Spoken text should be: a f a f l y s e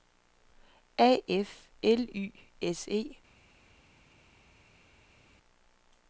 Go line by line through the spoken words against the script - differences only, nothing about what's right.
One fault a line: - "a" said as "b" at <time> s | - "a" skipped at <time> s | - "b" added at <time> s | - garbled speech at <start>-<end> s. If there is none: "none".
- "a f" skipped at 1.7 s